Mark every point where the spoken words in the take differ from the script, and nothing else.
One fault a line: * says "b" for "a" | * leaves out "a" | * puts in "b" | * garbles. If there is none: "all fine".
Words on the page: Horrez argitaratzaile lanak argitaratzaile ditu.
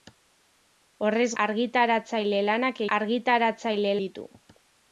all fine